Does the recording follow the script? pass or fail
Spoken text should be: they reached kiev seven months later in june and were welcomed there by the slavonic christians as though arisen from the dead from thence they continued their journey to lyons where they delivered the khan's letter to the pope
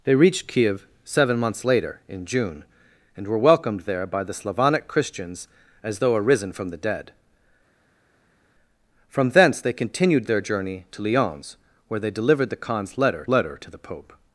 fail